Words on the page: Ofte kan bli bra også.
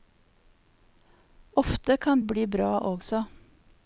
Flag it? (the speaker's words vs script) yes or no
no